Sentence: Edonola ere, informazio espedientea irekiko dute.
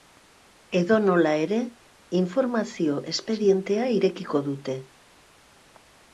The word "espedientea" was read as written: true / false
true